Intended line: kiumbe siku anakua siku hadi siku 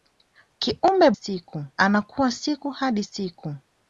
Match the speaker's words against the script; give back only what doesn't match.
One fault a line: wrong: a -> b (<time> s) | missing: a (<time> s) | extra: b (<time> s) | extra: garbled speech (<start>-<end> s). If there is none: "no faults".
no faults